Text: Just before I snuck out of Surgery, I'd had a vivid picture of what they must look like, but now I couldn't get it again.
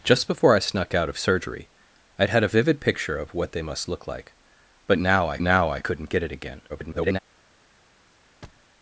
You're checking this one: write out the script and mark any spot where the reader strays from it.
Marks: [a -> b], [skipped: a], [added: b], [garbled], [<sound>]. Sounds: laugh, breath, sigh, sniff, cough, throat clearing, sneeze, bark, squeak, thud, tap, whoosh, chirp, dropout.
Just before I snuck out of Surgery, I'd had a vivid picture of what they must look like, but now I [added: now I] couldn't get it again. [garbled] [thud]